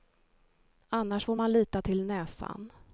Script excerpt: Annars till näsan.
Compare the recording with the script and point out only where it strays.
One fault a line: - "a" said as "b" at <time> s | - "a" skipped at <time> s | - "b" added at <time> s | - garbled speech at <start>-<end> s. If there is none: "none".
- "får man lita" added at 1.2 s